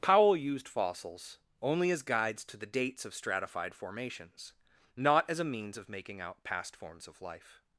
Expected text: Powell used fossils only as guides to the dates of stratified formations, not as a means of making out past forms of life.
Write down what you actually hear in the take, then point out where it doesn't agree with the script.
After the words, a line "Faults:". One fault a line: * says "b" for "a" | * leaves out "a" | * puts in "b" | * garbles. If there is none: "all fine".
Powell used fossils only as guides to the dates of stratified formations, not as a means of making out past forms of life.
Faults:
all fine